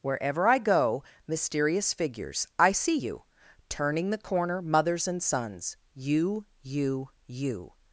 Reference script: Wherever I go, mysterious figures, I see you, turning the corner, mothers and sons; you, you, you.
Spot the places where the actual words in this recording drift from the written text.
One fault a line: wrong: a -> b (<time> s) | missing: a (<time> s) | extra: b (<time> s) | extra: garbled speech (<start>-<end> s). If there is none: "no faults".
no faults